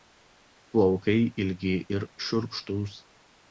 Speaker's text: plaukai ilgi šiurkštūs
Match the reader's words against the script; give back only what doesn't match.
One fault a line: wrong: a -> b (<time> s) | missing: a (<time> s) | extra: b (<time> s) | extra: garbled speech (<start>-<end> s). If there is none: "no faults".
extra: ir (2.0 s)